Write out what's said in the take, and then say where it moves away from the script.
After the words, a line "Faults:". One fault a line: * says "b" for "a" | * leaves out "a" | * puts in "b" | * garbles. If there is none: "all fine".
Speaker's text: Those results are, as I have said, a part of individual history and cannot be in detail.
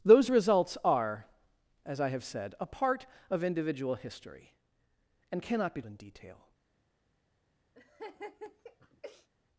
Those results are, as I have said, a part of individual history and cannot be in detail.
Faults:
all fine